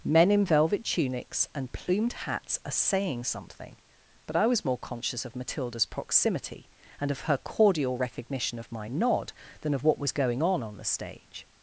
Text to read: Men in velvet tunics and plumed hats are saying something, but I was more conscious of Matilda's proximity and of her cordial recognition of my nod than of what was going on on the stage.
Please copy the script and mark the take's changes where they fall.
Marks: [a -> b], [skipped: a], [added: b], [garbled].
Men in velvet tunics and plumed hats are saying something, but I was more conscious of Matilda's proximity and of her cordial recognition of my nod than of what was going on on the stage.